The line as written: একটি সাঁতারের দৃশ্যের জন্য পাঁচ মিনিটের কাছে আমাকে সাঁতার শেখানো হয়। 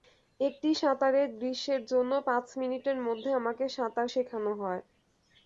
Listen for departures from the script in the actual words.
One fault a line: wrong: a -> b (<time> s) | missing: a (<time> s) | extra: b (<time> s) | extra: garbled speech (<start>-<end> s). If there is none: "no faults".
wrong: কাছে -> মধ্যে (3.1 s)